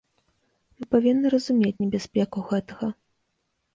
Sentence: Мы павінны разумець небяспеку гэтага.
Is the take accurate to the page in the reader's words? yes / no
yes